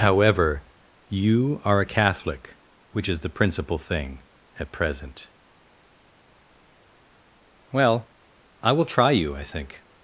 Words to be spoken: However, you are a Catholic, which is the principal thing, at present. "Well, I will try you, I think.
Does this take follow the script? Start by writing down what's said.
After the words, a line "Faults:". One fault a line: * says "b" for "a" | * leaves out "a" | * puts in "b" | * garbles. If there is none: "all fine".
However, you are a Catholic, which is the principal thing, at present. "Well, I will try you, I think.
Faults:
all fine